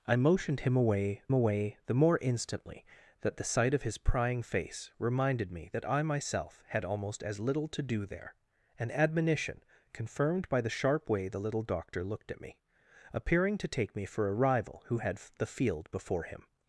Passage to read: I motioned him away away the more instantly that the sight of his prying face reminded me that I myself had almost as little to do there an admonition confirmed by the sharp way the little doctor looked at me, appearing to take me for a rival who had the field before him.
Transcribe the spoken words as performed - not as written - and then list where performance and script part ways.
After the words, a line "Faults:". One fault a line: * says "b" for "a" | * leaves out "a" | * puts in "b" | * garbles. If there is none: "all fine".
I motioned him away away the more instantly that the sight of his prying face reminded me that I myself had almost as little to do there an admonition confirmed by the sharp way the little doctor looked at me, appearing to take me for a rival who had the field before him.
Faults:
all fine